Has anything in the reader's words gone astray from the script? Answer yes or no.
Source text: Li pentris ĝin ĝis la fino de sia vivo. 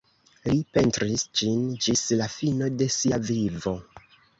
no